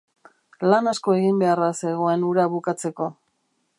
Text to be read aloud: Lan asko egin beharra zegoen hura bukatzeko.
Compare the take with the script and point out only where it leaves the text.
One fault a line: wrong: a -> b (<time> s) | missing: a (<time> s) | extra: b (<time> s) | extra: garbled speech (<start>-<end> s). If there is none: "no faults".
no faults